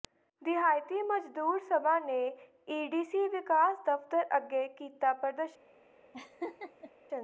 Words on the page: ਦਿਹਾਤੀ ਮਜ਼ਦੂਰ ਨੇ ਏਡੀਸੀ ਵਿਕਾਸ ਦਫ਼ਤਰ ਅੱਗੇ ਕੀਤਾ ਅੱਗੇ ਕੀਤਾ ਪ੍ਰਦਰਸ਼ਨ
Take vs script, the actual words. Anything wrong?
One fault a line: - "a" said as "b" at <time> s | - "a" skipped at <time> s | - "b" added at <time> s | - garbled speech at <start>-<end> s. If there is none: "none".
- "ਸਭਾ" added at 1.6 s
- "ਅੱਗੇ ਕੀਤਾ" skipped at 5.1 s